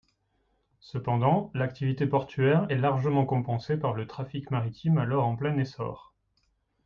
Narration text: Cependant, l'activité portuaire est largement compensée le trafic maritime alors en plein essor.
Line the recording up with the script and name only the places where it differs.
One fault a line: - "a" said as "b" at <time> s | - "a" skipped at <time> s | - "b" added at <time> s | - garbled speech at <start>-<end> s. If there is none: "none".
- "par" added at 3.8 s